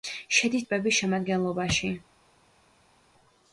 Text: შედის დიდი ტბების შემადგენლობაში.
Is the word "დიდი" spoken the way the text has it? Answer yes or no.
no